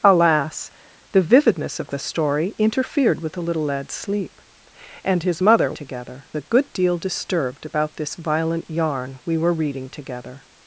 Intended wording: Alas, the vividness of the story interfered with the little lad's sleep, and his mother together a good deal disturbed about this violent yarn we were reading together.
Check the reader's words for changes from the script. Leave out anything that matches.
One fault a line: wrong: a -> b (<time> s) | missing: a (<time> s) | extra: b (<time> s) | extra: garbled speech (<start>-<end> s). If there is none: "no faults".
no faults